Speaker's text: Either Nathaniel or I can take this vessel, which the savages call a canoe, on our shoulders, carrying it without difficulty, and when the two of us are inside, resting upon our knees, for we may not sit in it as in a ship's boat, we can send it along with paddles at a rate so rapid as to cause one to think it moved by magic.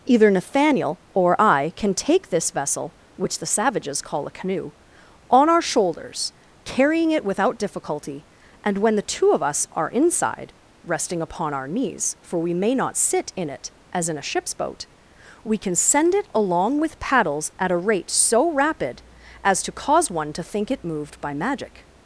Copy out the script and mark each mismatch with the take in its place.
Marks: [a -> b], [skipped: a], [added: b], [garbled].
Either Nathaniel or I can take this vessel, which the savages call a canoe, on our shoulders, carrying it without difficulty, and when the two of us are inside, resting upon our knees, for we may not sit in it as in a ship's boat, we can send it along with paddles at a rate so rapid as to cause one to think it moved by magic.